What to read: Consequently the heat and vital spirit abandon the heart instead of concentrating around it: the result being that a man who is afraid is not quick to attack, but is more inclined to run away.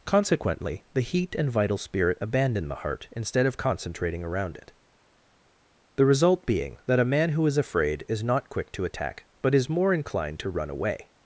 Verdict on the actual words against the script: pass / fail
pass